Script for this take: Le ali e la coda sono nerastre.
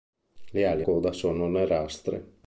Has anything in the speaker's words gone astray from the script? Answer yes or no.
yes